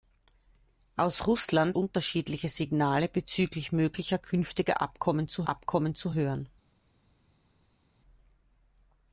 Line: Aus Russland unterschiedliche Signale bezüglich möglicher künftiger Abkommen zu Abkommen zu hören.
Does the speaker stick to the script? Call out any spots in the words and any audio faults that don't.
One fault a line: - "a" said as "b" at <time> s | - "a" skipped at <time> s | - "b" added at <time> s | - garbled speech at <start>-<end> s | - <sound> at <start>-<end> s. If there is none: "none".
none